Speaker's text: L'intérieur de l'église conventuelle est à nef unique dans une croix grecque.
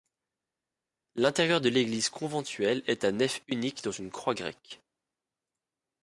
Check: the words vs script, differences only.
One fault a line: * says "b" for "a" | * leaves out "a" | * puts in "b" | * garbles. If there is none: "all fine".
all fine